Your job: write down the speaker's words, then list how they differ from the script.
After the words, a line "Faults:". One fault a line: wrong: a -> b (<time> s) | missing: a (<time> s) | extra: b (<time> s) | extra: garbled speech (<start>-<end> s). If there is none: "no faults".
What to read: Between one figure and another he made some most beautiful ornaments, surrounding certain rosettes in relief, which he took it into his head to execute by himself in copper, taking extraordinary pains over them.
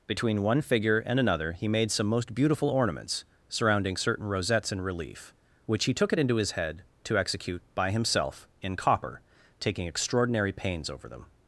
Between one figure and another he made some most beautiful ornaments, surrounding certain rosettes in relief, which he took it into his head to execute by himself in copper, taking extraordinary pains over them.
Faults:
no faults